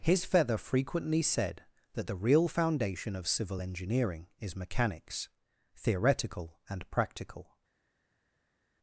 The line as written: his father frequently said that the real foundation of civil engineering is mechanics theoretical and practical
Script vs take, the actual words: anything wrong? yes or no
yes